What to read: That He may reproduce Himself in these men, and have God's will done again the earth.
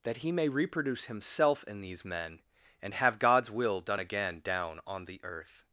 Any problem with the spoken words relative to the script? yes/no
yes